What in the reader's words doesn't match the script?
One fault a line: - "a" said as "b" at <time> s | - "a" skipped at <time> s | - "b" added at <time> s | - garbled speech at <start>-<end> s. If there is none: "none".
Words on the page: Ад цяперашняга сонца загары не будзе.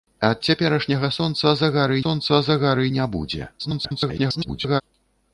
- "сонца загары" added at 2.0 s
- garbled speech at 3.6-4.8 s